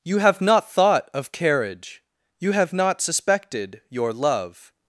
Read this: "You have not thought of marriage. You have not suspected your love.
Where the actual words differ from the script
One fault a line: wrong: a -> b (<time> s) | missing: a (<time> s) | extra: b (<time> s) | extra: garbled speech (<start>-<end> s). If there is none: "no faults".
wrong: marriage -> carriage (1.3 s)